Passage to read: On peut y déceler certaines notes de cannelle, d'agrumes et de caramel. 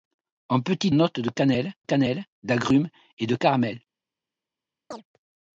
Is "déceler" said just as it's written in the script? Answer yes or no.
no